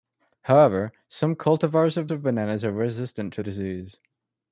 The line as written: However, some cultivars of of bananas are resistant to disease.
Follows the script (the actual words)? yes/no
yes